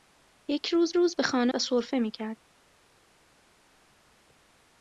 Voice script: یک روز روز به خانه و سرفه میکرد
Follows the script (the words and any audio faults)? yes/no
yes